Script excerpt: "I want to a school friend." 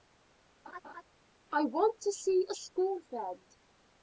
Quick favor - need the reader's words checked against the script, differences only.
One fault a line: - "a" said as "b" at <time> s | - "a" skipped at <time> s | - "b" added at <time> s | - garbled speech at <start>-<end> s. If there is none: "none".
- "see" added at 2.1 s